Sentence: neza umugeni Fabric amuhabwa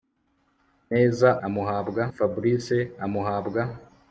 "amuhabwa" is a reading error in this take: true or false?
false